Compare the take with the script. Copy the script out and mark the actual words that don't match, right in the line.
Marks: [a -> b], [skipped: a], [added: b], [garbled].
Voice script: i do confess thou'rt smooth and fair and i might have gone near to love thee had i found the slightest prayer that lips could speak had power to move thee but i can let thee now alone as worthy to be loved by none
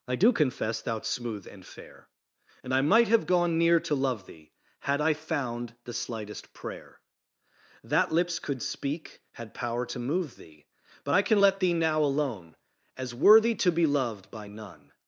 i do confess thou'rt smooth and fair and i might have gone near to love thee had i found the slightest prayer that lips could speak had power to move thee but i can let thee now alone as worthy to be loved by none